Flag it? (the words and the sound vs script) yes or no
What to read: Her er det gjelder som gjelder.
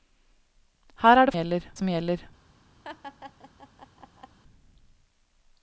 yes